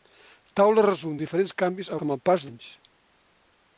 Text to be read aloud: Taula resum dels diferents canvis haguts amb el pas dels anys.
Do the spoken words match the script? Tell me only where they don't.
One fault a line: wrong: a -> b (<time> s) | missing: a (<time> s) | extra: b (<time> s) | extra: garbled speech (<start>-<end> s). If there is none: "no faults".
missing: dels (1.2 s)
missing: haguts (1.9 s)
missing: dels (2.5 s)